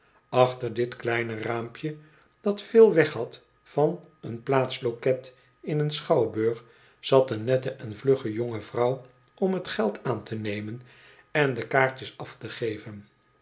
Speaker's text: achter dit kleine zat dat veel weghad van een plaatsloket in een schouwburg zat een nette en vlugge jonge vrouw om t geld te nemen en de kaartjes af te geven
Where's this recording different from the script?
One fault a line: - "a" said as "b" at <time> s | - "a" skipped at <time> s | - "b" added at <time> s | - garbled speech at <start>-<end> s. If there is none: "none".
- "zat" said as "raampje" at 1.4 s
- "aan" added at 10.0 s